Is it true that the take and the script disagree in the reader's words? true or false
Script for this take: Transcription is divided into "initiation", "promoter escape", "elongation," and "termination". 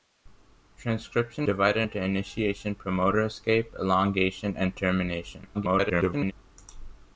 true